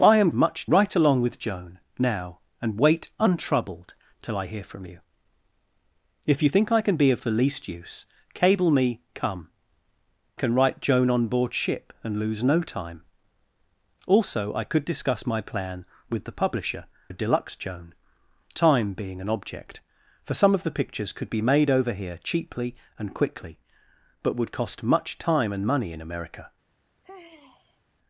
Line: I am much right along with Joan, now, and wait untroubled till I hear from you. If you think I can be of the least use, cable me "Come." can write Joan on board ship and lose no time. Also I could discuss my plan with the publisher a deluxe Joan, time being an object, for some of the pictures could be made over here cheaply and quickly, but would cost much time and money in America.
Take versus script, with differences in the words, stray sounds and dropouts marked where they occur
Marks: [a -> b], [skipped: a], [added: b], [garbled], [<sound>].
I am much right along with Joan, now, and wait untroubled till I hear from you. If you think I can be of the least use, cable me "Come." can write Joan on board ship and lose no time. Also I could discuss my plan with the publisher a deluxe Joan, time being an object, for some of the pictures could be made over here cheaply and quickly, but would cost much time and money in America. [sigh]